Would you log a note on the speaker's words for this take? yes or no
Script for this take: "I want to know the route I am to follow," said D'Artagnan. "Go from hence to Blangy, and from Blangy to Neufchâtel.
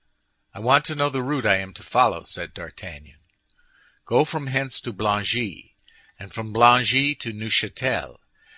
no